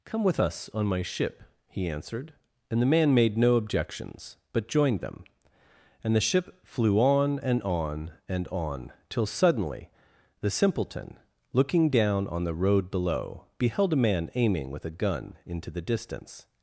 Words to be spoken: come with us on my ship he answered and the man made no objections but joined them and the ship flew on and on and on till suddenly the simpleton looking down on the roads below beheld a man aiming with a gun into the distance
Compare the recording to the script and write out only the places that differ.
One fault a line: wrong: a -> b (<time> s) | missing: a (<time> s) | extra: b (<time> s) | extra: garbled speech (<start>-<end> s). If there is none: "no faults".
wrong: roads -> road (12.5 s)